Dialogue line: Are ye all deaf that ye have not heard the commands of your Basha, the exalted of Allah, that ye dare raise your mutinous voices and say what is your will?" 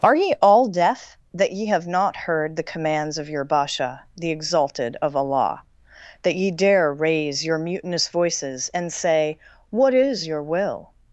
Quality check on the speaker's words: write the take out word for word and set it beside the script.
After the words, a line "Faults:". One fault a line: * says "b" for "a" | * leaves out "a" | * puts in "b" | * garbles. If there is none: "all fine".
Are ye all deaf that ye have not heard the commands of your Basha, the exalted of Allah, that ye dare raise your mutinous voices and say what is your will?"
Faults:
all fine